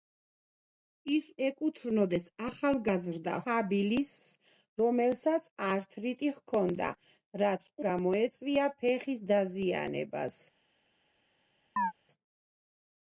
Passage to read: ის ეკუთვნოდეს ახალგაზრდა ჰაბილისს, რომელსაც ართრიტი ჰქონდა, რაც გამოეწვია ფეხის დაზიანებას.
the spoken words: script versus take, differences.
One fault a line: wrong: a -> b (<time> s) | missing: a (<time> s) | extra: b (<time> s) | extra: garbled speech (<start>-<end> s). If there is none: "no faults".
no faults